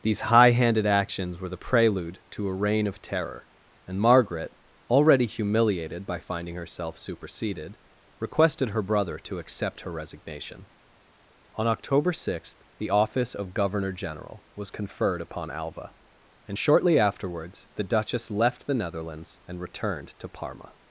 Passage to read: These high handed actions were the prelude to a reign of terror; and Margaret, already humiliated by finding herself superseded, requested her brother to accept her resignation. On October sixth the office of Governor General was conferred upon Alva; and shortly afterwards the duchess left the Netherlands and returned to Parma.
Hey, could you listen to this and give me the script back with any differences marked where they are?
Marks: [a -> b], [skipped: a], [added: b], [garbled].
These high handed actions were the prelude to a reign of terror; and Margaret, already humiliated by finding herself superseded, requested her brother to accept her resignation. On October sixth the office of Governor General was conferred upon Alva; and shortly afterwards the duchess left the Netherlands and returned to Parma.